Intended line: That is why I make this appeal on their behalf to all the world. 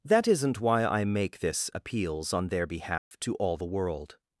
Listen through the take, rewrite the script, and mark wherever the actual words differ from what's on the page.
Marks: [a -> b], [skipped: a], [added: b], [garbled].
That [is -> isn't] why I make this [appeal -> appeals] on their behalf to all the world.